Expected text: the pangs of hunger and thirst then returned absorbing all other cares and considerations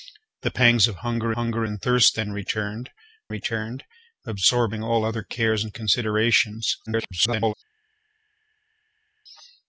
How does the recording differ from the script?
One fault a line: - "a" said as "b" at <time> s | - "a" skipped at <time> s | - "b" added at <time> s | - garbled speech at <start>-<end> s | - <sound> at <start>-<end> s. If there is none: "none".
- "hunger" added at 1.4 s
- "returned" added at 3.3 s
- garbled speech at 6.9-7.5 s